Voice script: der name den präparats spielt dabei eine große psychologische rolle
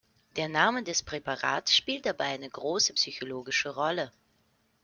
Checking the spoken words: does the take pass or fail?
fail